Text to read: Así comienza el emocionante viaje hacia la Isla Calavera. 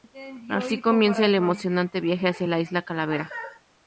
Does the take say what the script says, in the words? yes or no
yes